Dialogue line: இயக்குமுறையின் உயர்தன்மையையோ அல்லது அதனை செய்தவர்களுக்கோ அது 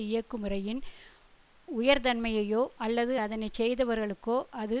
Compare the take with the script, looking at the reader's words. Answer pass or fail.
pass